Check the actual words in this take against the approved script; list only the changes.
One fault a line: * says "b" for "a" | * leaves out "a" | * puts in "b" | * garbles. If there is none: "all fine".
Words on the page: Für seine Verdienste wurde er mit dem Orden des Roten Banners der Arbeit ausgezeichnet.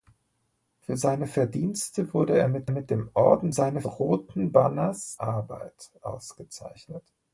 * puts in "mit"
* says "seine" for "des"
* leaves out "der"